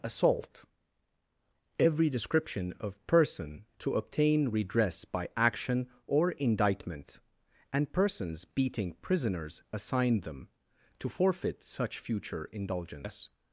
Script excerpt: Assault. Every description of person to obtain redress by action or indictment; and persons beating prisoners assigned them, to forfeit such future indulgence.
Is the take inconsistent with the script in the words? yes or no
no